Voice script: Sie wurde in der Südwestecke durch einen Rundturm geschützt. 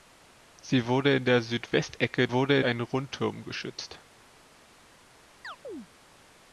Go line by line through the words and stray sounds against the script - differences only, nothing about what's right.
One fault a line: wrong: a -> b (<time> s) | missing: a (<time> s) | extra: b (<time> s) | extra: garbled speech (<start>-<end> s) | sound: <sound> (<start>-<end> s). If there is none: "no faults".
wrong: durch -> wurde (2.3 s)
sound: chirp (5.4-5.9 s)